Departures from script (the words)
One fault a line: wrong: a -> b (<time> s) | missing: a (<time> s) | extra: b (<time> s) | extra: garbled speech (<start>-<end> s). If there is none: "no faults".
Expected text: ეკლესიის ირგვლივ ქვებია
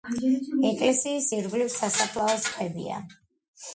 extra: სასაფლაოს (1.7 s)